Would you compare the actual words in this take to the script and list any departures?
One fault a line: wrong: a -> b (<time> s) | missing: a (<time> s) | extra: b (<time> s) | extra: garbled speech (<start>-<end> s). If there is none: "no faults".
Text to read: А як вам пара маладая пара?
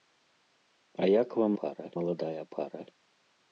no faults